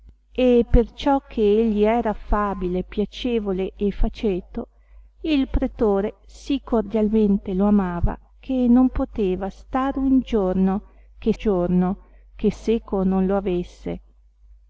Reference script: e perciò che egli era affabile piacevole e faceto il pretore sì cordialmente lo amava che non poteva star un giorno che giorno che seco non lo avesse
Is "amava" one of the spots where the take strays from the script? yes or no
no